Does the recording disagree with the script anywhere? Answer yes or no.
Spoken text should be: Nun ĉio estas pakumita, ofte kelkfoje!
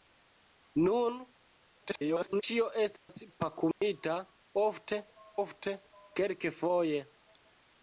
yes